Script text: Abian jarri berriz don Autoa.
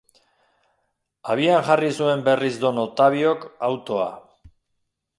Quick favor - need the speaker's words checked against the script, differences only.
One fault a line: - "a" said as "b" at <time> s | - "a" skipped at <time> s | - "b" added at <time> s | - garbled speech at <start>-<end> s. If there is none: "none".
- "zuen" added at 2.0 s
- "Ottaviok" added at 2.9 s